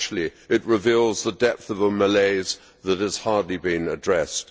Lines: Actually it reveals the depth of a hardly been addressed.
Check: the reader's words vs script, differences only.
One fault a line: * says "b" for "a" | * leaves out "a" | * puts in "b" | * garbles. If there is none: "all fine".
* puts in "malaise that has"